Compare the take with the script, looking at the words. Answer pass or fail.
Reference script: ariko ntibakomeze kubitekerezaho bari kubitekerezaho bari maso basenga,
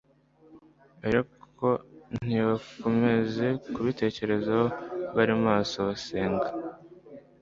fail